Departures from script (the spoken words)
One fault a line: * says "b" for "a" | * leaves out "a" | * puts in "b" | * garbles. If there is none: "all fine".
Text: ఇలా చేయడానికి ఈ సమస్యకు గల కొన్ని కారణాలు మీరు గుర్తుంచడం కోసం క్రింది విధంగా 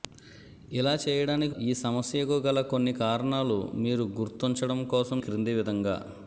all fine